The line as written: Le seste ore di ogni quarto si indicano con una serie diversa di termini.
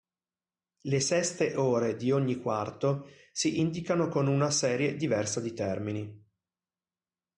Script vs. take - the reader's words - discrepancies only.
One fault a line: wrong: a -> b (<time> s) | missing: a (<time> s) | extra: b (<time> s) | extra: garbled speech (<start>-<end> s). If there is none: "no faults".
no faults